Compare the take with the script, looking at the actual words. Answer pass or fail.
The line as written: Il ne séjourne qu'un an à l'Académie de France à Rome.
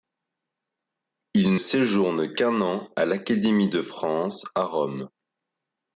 fail